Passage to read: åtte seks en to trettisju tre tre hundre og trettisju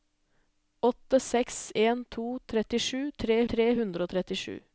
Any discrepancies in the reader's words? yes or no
no